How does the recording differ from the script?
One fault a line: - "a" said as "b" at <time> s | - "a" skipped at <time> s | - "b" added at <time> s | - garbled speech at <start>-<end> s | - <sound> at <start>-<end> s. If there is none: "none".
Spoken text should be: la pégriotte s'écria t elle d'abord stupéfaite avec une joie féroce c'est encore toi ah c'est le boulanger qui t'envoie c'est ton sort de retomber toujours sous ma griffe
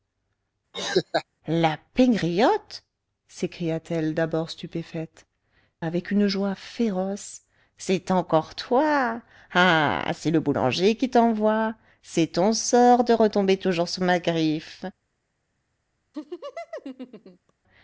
- laugh at 0.7-1.2 s
- laugh at 16.1-17.5 s